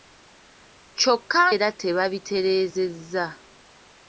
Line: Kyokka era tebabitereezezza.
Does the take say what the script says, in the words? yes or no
yes